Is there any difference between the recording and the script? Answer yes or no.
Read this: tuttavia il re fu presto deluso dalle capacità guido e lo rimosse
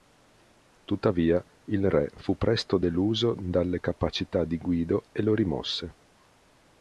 yes